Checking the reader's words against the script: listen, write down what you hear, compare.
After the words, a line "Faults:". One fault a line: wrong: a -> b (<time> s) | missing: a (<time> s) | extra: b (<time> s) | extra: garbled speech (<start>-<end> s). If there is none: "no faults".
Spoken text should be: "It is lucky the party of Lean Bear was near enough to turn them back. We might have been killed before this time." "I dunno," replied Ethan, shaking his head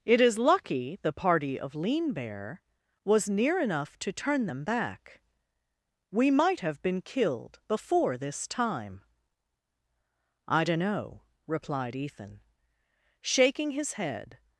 "It is lucky the party of Lean Bear was near enough to turn them back. We might have been killed before this time." "I dunno," replied Ethan, shaking his head
Faults:
no faults